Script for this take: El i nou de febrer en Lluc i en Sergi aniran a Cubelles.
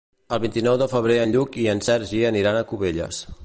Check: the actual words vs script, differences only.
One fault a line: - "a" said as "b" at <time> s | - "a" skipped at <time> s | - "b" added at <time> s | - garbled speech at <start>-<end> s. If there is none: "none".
- "vint" added at 0.5 s